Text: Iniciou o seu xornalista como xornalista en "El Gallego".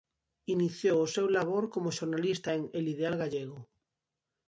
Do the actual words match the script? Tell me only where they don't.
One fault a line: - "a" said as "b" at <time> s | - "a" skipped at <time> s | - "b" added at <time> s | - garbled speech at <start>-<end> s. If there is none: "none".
- "xornalista" said as "labor" at 1.4 s
- "Ideal" added at 2.9 s